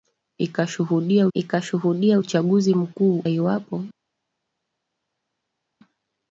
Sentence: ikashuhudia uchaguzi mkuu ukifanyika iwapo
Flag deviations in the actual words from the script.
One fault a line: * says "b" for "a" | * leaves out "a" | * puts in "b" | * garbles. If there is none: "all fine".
* puts in "ikashuhudia"
* leaves out "ukifanyika"